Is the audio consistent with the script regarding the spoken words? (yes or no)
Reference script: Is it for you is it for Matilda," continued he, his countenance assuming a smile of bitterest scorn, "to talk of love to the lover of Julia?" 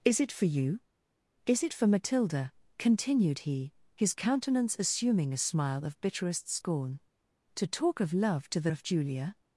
no